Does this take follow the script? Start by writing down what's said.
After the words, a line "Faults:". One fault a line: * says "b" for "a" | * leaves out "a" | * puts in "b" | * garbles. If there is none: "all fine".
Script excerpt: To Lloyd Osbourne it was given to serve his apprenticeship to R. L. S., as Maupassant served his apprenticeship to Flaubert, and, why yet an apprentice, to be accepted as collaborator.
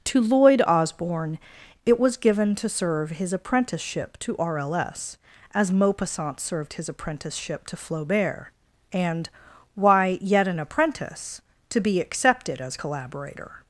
To Lloyd Osbourne it was given to serve his apprenticeship to R. L. S., as Maupassant served his apprenticeship to Flaubert, and, why yet an apprentice, to be accepted as collaborator.
Faults:
all fine